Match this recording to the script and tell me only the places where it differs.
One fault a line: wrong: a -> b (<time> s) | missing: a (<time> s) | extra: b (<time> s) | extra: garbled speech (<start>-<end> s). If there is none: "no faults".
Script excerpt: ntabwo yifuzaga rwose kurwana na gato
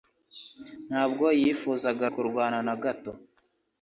missing: rwose (2.0 s)